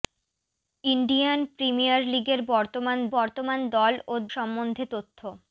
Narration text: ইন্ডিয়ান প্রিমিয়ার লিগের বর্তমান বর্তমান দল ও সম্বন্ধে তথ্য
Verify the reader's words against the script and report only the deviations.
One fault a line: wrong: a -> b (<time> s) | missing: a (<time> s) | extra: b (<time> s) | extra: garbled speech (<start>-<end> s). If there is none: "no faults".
no faults